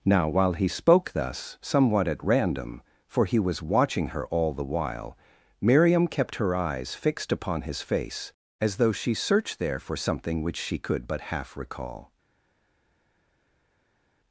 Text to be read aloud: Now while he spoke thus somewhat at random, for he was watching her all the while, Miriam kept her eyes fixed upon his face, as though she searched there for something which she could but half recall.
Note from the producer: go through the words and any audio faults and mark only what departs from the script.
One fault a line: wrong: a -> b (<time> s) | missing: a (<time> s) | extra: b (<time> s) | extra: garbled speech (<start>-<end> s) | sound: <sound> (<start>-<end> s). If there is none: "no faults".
no faults